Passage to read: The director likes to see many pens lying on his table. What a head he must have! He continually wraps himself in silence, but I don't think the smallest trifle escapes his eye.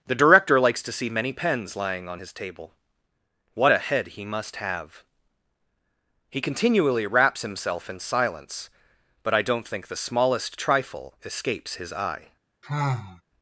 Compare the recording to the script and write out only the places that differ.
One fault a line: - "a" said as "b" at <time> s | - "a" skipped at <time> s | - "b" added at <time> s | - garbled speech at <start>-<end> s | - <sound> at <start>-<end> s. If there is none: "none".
- sigh at 12.6-13.2 s